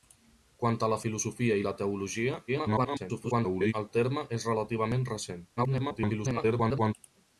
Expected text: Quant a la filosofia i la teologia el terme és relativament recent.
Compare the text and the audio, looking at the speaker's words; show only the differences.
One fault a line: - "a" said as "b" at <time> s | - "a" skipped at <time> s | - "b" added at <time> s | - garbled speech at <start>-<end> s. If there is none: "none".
- garbled speech at 2.5-3.7 s
- garbled speech at 5.6-6.9 s